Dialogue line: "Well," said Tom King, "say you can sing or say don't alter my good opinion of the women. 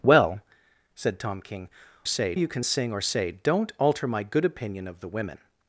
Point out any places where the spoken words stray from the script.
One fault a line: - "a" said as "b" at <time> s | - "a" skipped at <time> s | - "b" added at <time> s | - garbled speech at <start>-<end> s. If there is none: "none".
none